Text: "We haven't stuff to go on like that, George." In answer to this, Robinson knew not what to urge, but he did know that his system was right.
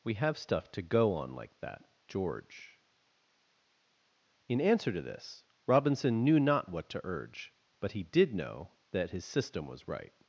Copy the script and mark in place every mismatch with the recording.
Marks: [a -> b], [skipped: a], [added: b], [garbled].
"We [haven't -> have] stuff to go on like that, George." In answer to this, Robinson knew not what to urge, but he did know that his system was right.